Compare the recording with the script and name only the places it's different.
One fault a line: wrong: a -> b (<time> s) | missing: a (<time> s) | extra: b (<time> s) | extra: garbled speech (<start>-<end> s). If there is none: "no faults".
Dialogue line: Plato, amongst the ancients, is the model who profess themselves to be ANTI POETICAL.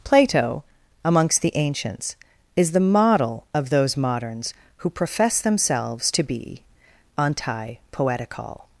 extra: of those moderns (3.5 s)